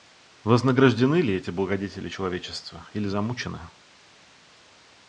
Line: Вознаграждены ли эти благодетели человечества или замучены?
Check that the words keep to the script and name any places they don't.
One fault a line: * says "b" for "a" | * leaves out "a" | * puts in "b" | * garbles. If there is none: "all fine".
all fine